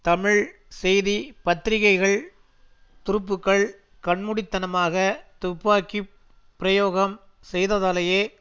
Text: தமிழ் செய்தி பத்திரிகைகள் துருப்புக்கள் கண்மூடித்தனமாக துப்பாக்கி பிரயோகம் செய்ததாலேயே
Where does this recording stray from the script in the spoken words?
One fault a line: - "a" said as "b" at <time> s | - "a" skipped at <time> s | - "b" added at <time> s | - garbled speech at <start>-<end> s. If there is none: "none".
none